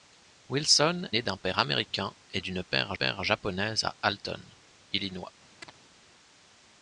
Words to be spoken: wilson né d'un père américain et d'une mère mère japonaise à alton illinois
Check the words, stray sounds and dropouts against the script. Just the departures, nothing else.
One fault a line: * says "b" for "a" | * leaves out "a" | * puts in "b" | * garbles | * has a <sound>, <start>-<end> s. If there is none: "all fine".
* has a chirp, 5.6-5.7 s